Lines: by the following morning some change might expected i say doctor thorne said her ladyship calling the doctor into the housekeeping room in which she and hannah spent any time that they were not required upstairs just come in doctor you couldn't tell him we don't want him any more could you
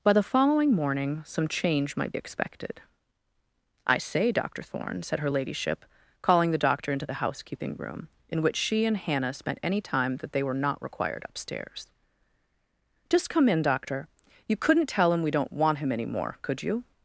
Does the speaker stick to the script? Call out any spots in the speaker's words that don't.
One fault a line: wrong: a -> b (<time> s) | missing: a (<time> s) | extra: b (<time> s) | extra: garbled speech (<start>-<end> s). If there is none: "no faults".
no faults